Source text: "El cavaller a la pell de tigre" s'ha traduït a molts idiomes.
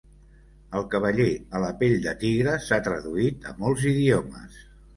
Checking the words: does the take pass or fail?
pass